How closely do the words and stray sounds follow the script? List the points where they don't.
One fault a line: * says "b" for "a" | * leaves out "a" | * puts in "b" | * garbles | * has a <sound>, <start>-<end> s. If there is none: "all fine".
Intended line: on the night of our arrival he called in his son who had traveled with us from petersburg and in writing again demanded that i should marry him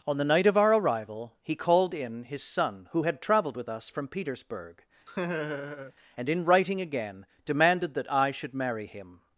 * has a laugh, 5.1-5.9 s